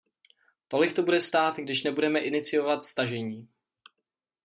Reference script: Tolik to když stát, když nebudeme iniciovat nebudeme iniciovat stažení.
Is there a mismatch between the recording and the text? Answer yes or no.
yes